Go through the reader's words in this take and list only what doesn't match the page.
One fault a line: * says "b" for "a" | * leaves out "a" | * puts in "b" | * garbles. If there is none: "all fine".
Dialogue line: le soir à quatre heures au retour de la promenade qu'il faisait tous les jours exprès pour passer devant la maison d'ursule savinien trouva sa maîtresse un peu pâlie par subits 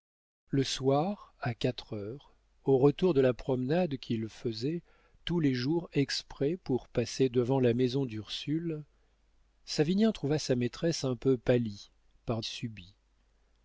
all fine